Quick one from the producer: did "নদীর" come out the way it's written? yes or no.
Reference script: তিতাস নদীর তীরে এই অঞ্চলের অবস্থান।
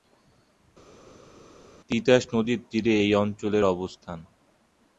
yes